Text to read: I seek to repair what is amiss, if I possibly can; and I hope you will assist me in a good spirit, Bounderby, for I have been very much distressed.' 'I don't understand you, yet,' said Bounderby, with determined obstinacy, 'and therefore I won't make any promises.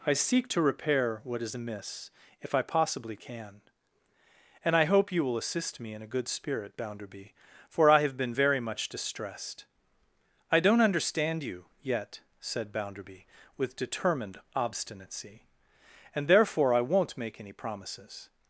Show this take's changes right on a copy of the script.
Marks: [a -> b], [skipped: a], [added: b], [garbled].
I seek to repair what is amiss, if I possibly can; and I hope you will assist me in a good spirit, Bounderby, for I have been very much distressed.' 'I don't understand you, yet,' said Bounderby, with determined obstinacy, 'and therefore I won't make any promises.